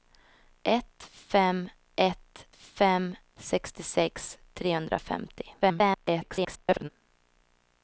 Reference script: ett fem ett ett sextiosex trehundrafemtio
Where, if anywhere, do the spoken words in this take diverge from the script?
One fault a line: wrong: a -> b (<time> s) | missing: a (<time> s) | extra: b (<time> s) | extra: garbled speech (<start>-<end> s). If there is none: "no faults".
wrong: ett -> fem (2.5 s)
extra: garbled speech (5.6-6.9 s)